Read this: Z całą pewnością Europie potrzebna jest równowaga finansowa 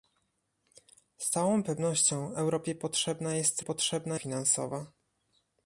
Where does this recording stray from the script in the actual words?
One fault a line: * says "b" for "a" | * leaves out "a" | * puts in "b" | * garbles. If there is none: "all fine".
* says "potrzebna" for "równowaga"